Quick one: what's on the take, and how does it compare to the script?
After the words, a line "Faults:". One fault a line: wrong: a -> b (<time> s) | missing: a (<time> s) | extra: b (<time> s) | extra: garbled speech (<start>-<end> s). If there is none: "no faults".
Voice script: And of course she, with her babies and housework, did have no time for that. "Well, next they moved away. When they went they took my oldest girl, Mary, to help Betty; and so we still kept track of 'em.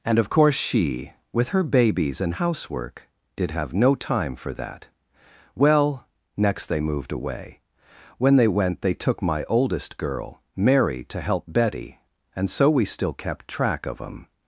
And of course she, with her babies and housework, did have no time for that. "Well, next they moved away. When they went they took my oldest girl, Mary, to help Betty; and so we still kept track of 'em.
Faults:
no faults